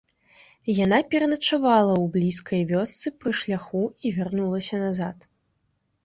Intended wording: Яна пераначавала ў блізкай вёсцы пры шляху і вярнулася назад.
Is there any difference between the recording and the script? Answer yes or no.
no